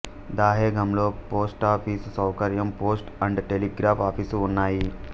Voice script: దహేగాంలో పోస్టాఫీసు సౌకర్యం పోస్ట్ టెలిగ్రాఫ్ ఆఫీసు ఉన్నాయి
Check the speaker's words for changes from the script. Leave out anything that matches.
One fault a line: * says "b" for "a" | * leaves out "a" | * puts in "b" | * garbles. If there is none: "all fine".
* puts in "అండ్"